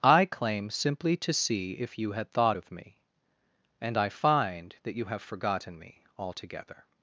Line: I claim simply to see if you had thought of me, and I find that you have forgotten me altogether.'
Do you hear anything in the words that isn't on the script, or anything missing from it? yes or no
no